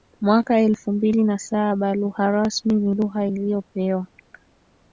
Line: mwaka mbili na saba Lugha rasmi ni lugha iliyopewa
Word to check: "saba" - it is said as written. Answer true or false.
true